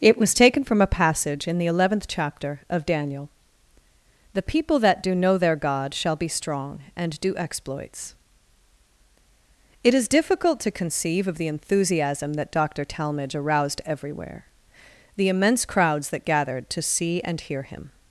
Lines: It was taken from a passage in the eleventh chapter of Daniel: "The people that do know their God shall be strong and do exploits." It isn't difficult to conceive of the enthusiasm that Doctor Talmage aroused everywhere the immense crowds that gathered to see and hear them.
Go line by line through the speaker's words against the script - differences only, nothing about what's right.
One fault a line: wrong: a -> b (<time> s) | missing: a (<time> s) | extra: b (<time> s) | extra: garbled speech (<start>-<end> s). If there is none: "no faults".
wrong: isn't -> is (9.9 s)
wrong: them -> him (17.6 s)